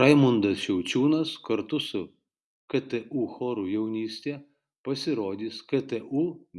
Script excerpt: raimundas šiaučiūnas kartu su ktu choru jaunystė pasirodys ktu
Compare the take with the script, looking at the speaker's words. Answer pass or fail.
pass